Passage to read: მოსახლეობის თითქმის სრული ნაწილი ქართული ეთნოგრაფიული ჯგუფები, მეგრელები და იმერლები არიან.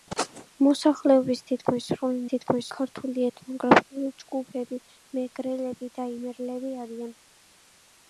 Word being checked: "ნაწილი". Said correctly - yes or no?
no